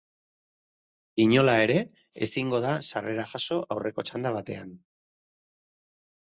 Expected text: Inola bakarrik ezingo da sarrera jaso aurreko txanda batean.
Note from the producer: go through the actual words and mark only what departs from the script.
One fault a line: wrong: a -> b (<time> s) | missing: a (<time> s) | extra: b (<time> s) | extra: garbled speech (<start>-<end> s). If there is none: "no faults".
wrong: bakarrik -> ere (1.6 s)